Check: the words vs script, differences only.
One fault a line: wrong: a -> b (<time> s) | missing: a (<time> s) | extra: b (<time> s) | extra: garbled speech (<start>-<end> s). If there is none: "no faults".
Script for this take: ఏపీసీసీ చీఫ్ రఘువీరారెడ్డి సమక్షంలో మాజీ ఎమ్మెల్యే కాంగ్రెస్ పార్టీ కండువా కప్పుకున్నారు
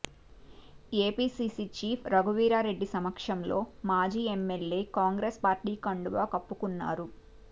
no faults